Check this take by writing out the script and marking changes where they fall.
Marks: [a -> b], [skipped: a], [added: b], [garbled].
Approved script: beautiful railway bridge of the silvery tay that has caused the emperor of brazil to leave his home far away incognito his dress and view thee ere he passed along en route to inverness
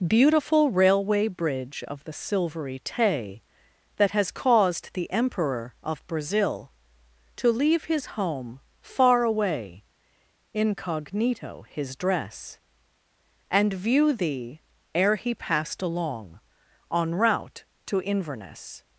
beautiful railway bridge of the silvery tay that has caused the emperor of brazil to leave his home far away incognito his dress and view thee ere he passed along en route to inverness